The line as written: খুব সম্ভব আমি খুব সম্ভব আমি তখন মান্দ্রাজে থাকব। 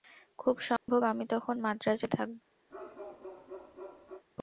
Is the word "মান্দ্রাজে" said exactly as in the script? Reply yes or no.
yes